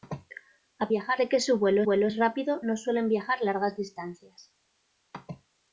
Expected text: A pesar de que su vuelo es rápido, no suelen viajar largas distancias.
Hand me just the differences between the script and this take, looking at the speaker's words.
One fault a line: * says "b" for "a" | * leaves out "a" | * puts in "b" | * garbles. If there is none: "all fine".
* says "viajar" for "pesar"
* puts in "vuelo"